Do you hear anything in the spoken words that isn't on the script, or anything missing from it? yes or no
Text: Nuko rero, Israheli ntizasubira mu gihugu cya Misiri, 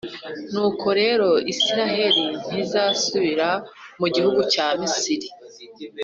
no